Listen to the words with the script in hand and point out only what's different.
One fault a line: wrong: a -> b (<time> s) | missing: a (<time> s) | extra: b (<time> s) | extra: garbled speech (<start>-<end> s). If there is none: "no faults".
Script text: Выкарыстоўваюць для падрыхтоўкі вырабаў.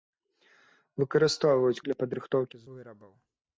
no faults